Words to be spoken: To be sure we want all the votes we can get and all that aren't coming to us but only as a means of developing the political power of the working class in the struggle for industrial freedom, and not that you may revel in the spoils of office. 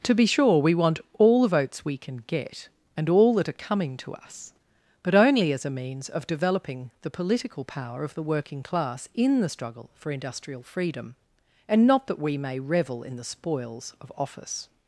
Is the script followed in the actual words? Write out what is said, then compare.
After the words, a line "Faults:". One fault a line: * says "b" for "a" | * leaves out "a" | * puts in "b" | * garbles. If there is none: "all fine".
To be sure we want all the votes we can get and all that are coming to us but only as a means of developing the political power of the working class in the struggle for industrial freedom, and not that we may revel in the spoils of office.
Faults:
* says "are" for "aren't"
* says "we" for "you"